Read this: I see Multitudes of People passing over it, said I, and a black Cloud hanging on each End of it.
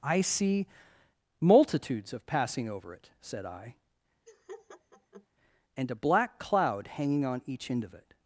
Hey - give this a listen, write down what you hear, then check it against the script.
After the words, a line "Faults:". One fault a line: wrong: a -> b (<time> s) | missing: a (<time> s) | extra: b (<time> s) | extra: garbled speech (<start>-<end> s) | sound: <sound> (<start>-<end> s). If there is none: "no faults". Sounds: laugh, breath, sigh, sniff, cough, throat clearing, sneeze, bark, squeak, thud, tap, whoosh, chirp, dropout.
I see Multitudes of passing over it, said I, and a black Cloud hanging on each End of it.
Faults:
missing: People (2.3 s)
sound: laugh (4.3-5.3 s)